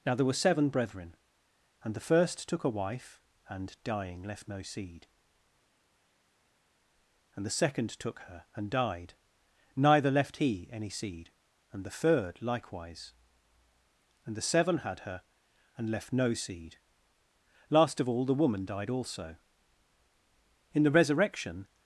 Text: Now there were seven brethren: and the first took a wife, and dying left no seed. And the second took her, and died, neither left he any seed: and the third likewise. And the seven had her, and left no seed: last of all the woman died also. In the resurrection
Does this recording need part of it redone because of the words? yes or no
no